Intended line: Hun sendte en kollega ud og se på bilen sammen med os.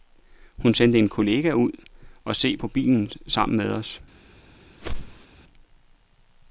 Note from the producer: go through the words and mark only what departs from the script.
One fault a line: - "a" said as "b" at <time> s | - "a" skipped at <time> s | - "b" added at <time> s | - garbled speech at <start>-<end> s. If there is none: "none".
none